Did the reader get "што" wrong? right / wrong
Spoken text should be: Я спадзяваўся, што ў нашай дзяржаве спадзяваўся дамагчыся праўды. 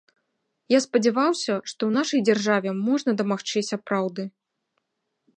right